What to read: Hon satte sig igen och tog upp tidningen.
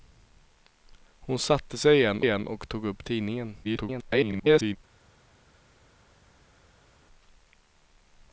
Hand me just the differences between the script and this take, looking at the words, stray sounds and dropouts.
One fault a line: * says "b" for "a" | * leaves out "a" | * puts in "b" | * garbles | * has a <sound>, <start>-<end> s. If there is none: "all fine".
* puts in "igen"
* garbles